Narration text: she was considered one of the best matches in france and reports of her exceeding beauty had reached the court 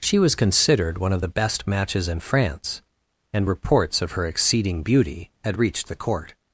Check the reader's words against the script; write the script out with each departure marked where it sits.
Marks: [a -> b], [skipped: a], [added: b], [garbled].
she was considered one of the best matches in france and reports of her exceeding beauty had reached the court